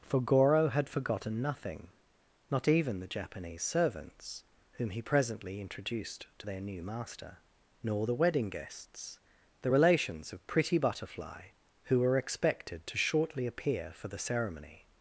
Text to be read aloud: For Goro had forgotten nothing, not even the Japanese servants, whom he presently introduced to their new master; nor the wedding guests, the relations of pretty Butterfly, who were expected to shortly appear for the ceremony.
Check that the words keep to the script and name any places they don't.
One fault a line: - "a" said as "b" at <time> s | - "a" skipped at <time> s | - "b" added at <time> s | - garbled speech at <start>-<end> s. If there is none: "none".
none